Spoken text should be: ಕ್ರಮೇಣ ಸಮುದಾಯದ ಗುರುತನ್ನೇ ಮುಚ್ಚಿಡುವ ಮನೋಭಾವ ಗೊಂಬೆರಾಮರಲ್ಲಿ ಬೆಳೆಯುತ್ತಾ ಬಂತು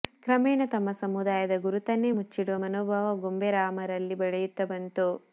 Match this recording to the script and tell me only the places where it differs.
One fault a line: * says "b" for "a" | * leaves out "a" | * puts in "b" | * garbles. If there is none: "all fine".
* puts in "ತಮ್ಮ"